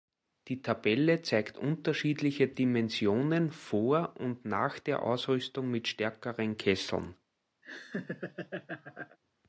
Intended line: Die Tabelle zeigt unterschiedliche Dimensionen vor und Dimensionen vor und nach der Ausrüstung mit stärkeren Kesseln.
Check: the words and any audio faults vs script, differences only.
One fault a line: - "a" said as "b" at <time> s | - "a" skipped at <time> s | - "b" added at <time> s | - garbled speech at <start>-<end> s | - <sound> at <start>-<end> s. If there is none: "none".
- "Dimensionen vor und" skipped at 4.5 s
- laugh at 7.6-9.2 s